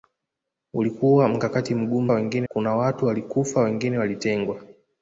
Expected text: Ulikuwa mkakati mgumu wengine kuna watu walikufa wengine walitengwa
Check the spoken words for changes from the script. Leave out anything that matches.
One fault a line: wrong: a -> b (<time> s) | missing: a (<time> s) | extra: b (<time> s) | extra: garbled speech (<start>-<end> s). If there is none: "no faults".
no faults